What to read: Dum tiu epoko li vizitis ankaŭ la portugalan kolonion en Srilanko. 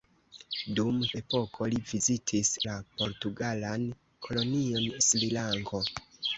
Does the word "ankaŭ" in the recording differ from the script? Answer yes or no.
yes